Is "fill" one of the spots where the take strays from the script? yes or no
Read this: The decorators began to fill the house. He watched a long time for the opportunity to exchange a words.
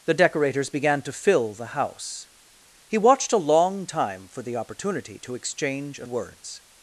no